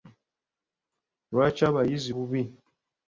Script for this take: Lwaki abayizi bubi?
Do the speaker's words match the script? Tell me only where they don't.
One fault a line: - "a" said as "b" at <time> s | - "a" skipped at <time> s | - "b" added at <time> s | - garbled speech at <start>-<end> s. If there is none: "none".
none